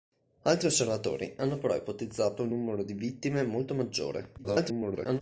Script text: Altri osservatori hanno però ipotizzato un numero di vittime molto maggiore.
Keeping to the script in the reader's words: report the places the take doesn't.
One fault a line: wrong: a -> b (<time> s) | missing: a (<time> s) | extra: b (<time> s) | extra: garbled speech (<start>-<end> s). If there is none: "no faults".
extra: garbled speech (4.4-5.2 s)